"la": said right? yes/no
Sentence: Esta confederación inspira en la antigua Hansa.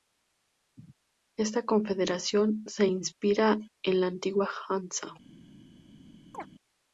yes